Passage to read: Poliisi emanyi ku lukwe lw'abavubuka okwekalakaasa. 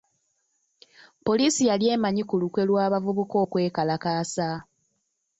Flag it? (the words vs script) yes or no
yes